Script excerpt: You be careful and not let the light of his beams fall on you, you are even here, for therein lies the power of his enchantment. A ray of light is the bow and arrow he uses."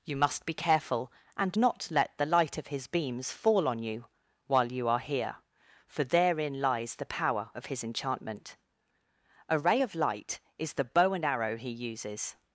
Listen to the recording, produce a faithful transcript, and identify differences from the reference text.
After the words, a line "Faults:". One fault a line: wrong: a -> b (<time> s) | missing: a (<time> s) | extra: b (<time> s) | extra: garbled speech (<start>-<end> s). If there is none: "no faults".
You must be careful and not let the light of his beams fall on you, while you are here, for therein lies the power of his enchantment. A ray of light is the bow and arrow he uses."
Faults:
extra: must (0.1 s)
extra: while (4.5 s)
missing: even (5.0 s)